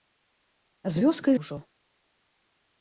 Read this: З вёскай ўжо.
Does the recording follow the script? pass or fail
pass